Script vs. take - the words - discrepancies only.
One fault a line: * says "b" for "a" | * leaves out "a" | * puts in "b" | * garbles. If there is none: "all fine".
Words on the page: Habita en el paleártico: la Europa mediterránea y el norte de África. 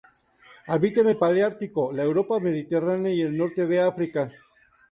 all fine